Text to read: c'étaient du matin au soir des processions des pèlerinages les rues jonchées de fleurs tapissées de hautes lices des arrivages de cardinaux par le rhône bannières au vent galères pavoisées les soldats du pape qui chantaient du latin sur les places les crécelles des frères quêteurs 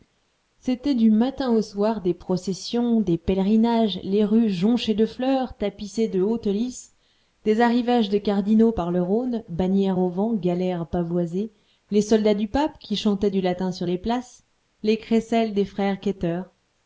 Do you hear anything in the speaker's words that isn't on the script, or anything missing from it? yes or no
no